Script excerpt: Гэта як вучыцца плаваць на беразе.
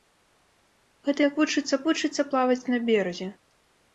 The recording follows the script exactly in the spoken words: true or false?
false